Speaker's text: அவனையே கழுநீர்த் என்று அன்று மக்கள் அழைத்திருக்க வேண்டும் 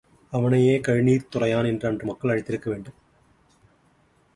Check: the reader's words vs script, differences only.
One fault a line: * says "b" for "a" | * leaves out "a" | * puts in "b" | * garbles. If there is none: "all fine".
* puts in "துறையான்"